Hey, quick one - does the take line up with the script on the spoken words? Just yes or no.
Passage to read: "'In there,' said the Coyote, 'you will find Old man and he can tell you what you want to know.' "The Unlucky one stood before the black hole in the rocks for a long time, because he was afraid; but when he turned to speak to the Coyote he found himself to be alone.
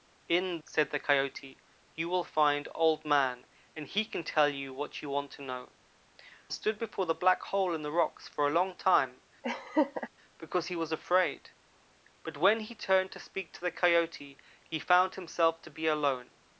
no